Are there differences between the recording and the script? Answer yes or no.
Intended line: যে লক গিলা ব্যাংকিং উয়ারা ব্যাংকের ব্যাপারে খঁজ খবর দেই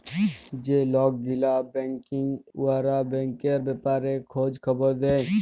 no